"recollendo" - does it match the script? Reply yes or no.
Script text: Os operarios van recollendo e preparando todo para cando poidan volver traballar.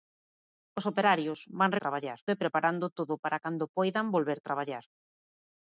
no